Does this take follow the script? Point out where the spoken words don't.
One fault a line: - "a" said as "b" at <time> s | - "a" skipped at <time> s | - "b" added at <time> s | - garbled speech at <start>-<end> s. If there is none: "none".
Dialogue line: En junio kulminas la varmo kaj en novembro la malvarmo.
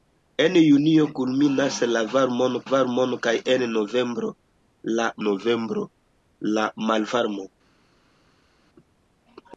- "varmo" added at 2.7 s
- "novembro la" added at 5.3 s